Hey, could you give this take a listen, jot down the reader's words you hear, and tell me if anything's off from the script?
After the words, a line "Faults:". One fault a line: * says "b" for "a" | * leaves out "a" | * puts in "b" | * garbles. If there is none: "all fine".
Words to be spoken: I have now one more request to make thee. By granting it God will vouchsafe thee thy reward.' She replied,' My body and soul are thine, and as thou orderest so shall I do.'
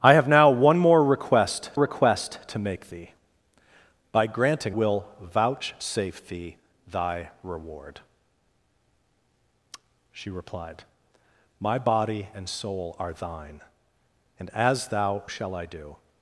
I have now one more request request to make thee. By granting will vouchsafe thee thy reward.' She replied,' My body and soul are thine, and as thou shall I do.'
Faults:
* puts in "request"
* leaves out "it God"
* leaves out "orderest so"